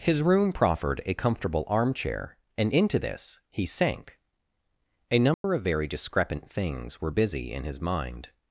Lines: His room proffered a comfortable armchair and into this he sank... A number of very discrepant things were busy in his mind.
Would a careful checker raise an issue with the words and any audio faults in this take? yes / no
yes